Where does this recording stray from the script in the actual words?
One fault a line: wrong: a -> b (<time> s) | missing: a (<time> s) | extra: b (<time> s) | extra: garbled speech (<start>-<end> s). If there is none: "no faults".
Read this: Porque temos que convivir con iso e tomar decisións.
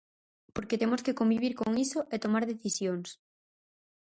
no faults